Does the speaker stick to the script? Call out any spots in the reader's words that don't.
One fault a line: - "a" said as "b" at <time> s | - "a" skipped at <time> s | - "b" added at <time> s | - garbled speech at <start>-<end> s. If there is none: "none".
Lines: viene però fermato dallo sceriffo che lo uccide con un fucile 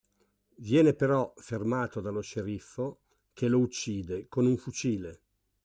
none